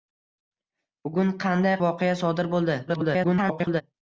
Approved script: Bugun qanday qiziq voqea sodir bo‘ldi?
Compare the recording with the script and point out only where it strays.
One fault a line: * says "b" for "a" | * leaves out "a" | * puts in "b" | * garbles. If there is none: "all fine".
* leaves out "qiziq"
* garbles